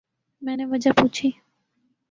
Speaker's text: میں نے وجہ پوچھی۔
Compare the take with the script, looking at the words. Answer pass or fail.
pass